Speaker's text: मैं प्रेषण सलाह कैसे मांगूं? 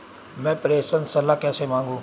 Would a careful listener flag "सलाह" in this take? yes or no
no